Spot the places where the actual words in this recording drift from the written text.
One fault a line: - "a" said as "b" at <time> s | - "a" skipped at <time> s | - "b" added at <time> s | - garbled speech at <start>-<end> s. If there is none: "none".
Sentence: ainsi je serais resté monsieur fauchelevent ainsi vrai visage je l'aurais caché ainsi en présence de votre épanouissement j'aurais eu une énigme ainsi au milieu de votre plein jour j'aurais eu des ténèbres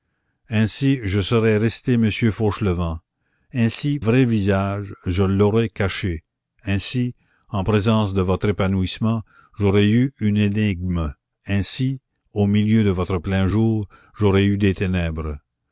none